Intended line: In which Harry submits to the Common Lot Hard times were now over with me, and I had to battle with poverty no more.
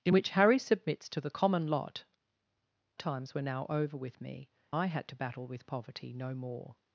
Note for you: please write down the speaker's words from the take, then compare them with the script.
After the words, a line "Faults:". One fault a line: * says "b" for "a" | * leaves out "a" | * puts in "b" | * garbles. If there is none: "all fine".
In which Harry submits to the Common Lot Times were now over with me, I had to battle with poverty no more.
Faults:
* leaves out "Hard"
* leaves out "and"